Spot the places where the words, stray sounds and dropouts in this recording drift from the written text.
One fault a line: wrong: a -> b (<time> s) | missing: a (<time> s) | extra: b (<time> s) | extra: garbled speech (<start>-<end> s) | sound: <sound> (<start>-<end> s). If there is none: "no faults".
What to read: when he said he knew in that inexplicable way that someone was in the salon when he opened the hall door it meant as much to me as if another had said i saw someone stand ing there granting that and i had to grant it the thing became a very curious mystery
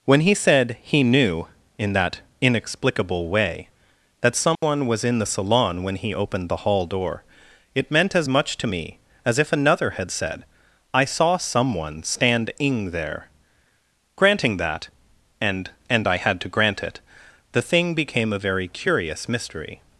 sound: dropout (4.6-4.6 s)
extra: and (15.9 s)